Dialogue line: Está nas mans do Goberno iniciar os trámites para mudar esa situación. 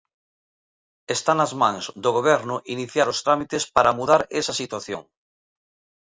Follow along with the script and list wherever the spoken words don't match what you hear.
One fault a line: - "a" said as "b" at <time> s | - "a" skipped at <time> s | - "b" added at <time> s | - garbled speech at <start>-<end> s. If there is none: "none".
none